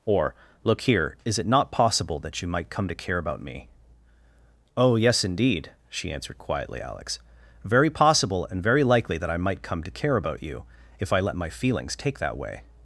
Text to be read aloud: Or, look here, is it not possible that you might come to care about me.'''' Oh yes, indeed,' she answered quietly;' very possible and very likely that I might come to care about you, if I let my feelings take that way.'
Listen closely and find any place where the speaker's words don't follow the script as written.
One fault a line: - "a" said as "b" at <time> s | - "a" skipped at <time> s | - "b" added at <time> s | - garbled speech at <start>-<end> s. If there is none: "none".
- "alex" added at 6.8 s